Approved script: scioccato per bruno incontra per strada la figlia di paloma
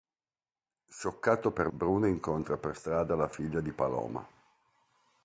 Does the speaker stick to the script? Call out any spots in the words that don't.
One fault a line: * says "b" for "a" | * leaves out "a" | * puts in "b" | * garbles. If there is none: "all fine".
all fine